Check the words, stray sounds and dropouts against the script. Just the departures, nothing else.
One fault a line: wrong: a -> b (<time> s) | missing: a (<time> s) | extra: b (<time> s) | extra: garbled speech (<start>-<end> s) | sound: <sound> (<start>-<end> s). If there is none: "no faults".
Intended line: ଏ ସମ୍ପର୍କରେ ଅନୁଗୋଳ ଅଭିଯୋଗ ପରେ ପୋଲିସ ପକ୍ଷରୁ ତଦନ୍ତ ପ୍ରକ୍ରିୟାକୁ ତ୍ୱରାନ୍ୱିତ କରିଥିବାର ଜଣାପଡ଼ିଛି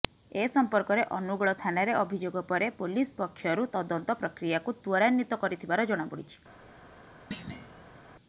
extra: ଥାନାରେ (1.6 s)
sound: thud (7.3-8.0 s)